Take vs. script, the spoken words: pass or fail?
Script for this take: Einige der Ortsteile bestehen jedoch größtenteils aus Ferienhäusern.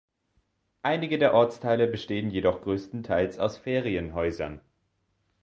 pass